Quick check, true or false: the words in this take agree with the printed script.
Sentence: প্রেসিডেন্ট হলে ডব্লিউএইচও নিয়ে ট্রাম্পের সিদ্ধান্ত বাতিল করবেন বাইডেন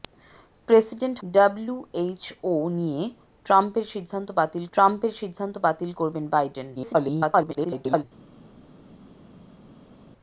false